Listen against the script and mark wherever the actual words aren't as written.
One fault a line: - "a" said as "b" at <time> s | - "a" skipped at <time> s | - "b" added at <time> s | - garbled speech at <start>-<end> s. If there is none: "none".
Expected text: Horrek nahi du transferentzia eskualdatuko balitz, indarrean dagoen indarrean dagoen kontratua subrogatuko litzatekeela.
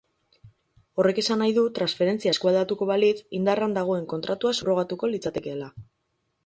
- "esan" added at 1.2 s
- "indarrean dagoen" skipped at 4.1 s